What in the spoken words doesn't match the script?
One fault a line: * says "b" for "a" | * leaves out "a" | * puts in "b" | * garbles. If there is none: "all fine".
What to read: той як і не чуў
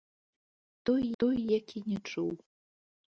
* puts in "той"